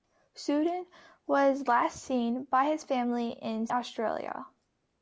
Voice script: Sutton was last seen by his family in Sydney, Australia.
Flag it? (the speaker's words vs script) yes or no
yes